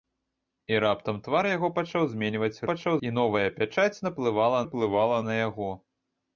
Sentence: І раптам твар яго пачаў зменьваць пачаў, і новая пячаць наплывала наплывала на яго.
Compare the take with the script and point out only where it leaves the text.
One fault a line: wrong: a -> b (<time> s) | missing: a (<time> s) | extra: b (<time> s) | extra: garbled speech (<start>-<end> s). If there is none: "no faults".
no faults